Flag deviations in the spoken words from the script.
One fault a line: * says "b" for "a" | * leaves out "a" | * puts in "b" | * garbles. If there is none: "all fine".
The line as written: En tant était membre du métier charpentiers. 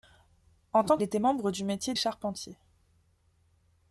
all fine